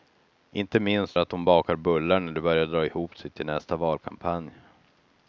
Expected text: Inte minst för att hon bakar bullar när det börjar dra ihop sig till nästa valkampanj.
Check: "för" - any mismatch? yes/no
yes